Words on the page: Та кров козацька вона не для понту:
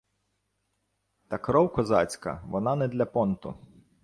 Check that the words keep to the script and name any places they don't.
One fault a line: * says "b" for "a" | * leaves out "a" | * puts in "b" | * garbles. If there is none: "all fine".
all fine